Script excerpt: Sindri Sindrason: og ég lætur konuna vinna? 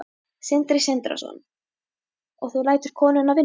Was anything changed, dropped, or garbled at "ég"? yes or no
yes